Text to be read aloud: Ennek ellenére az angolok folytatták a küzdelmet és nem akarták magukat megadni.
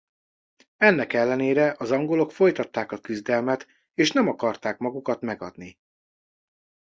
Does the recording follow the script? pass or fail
pass